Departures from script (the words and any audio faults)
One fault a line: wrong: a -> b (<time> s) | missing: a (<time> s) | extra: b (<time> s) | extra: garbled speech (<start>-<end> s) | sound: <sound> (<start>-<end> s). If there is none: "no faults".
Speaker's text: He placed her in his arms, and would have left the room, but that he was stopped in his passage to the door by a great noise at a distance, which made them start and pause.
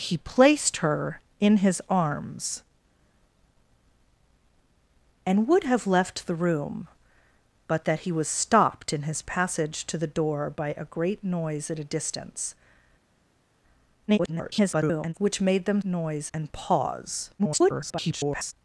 extra: garbled speech (14.1-15.1 s)
wrong: start -> noise (15.8 s)
extra: garbled speech (17.4-18.5 s)